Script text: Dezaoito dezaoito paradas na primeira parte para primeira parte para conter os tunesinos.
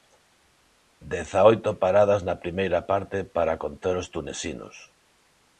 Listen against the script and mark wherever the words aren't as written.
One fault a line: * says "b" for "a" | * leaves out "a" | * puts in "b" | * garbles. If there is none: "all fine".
* leaves out "dezaoito"
* leaves out "primeira parte para"